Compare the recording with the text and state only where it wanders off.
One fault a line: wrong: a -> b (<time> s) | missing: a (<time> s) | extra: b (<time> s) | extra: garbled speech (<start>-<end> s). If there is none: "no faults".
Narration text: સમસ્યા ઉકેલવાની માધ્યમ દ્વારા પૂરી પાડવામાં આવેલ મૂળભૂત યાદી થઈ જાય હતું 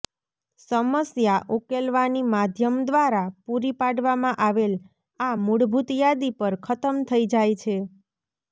extra: આ (5.2 s)
extra: પર ખતમ (6.4 s)
wrong: હતું -> છે (7.6 s)